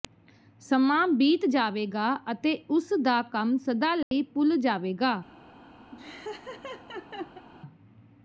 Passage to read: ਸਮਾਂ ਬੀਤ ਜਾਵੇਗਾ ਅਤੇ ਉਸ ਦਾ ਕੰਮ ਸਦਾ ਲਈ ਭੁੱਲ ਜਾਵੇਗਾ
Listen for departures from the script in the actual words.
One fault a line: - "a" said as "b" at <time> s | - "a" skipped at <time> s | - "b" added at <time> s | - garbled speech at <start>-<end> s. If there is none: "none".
none